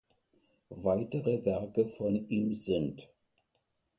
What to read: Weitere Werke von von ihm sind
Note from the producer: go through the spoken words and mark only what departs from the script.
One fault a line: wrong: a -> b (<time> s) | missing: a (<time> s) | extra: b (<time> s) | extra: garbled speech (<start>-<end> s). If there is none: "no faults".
missing: von (2.3 s)